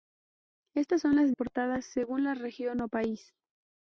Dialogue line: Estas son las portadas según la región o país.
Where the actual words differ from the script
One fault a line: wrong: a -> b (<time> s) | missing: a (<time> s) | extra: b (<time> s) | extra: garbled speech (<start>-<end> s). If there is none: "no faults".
no faults